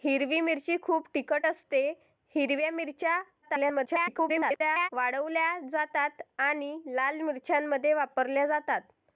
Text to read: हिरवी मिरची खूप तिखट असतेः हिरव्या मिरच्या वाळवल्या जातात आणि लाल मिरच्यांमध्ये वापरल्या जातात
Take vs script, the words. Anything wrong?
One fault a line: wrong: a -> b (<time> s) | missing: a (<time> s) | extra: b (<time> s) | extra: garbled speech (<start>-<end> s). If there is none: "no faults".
extra: garbled speech (3.4-4.9 s)